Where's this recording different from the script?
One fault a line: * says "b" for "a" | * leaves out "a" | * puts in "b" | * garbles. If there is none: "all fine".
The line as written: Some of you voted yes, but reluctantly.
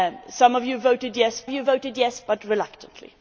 * puts in "you voted yes"